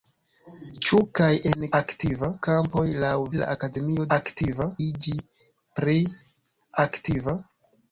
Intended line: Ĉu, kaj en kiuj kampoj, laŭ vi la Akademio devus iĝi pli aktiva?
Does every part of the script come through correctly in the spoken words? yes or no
no